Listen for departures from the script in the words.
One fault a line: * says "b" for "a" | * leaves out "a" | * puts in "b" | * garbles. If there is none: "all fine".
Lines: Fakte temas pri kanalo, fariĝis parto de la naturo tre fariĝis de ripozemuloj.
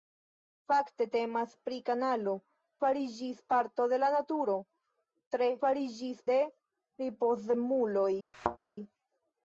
all fine